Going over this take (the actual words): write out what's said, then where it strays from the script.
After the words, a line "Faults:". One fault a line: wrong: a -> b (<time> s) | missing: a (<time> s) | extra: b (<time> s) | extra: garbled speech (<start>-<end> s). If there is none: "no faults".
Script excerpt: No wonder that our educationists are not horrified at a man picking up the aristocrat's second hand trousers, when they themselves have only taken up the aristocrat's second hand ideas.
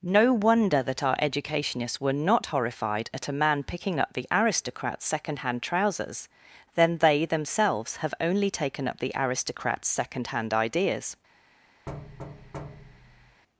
No wonder that our educationists were not horrified at a man picking up the aristocrat's second hand trousers, then they themselves have only taken up the aristocrat's second hand ideas.
Faults:
wrong: are -> were (2.0 s)
wrong: when -> then (6.7 s)